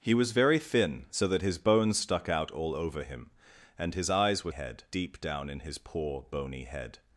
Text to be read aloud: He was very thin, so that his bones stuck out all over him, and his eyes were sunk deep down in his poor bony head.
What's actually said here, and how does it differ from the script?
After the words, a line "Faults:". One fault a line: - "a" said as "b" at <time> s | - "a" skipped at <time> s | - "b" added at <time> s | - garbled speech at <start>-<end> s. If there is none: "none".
He was very thin, so that his bones stuck out all over him, and his eyes were head deep down in his poor bony head.
Faults:
- "sunk" said as "head" at 4.5 s